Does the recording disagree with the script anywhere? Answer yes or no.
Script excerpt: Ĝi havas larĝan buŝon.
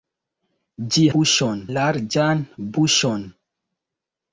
yes